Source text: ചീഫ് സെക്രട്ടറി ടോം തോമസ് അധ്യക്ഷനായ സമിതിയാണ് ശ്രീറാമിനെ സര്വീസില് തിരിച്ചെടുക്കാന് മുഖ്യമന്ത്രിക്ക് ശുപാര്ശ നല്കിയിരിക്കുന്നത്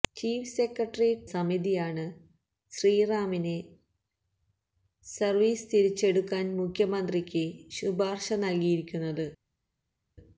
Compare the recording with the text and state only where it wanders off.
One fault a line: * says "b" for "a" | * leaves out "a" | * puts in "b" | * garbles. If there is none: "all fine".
* leaves out "ടോം തോമസ് അധ്യക്ഷനായ"